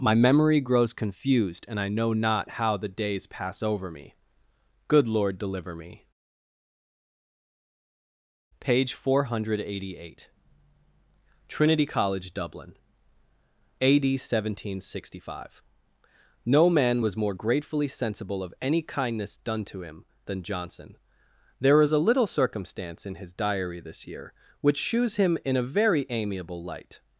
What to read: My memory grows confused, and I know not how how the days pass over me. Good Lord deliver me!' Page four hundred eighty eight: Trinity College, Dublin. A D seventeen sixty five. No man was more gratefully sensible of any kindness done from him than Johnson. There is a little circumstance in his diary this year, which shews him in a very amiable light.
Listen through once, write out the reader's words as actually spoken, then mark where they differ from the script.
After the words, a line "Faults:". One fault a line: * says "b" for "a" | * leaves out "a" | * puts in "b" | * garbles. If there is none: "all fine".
My memory grows confused, and I know not how the days pass over me. Good Lord deliver me!' Page four hundred eighty eight: Trinity College, Dublin. A D seventeen sixty five. No man was more gratefully sensible of any kindness done to him than Johnson. There is a little circumstance in his diary this year, which shews him in a very amiable light.
Faults:
* leaves out "how"
* says "to" for "from"